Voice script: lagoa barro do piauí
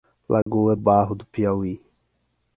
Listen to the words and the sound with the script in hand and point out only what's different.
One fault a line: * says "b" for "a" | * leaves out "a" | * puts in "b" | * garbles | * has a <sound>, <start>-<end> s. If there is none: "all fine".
* has a dropout, 0.4-0.5 s